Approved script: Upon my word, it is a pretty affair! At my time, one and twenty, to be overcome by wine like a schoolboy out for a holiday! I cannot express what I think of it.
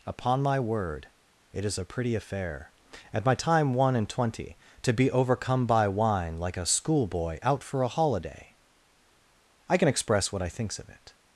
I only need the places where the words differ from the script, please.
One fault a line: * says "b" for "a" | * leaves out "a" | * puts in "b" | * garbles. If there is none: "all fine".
* says "can" for "cannot"
* says "thinks" for "think"